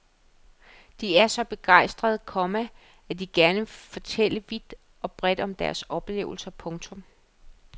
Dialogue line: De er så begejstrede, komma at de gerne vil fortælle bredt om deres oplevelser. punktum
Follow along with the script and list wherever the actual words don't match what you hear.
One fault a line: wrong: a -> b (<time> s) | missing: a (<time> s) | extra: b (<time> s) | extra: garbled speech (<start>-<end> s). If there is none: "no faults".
extra: vidt og (4.5 s)